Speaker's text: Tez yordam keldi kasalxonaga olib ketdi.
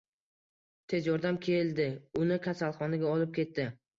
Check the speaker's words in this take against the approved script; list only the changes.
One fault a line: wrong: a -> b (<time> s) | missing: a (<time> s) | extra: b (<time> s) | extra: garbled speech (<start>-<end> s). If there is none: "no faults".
extra: uni (2.2 s)